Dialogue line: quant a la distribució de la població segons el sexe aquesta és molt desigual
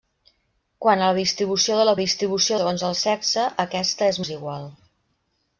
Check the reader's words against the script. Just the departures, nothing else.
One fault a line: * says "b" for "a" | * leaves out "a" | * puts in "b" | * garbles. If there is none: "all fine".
* says "distribució" for "població"
* leaves out "molt"